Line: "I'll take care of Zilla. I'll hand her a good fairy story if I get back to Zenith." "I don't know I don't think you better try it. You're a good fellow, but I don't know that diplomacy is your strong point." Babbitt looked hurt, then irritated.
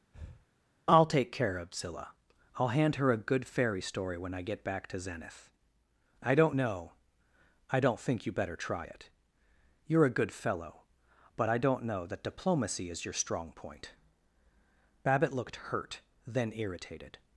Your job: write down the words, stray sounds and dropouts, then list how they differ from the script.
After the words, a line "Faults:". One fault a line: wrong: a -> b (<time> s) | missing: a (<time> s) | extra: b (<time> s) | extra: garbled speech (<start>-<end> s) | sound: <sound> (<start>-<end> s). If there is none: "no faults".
"I'll take care of Zilla. I'll hand her a good fairy story when I get back to Zenith." "I don't know I don't think you better try it. You're a good fellow, but I don't know that diplomacy is your strong point." Babbitt looked hurt, then irritated.
Faults:
sound: breath (0.1-0.5 s)
wrong: if -> when (4.2 s)